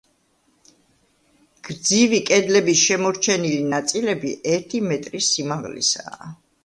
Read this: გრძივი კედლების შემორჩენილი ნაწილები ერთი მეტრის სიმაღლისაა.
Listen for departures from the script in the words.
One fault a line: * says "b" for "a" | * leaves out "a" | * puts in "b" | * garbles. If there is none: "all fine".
all fine